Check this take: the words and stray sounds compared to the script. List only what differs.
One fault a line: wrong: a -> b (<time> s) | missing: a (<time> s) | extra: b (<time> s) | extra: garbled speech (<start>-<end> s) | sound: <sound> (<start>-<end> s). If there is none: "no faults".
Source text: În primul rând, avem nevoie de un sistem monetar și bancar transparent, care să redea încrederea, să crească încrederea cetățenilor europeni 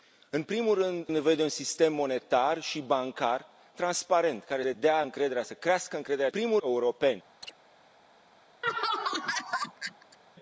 missing: avem (1.1 s)
missing: să (4.6 s)
wrong: cetățenilor -> primul (6.3 s)
sound: chirp (7.4-7.5 s)
sound: laugh (8.6-10.2 s)